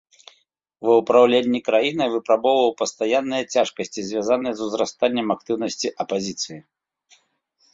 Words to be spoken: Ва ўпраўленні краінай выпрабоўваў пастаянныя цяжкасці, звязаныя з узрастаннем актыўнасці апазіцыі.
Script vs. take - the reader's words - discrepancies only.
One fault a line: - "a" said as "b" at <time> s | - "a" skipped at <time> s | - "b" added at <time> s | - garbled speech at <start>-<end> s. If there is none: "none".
none